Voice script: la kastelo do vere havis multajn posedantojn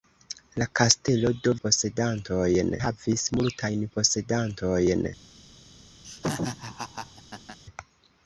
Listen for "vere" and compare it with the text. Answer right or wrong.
wrong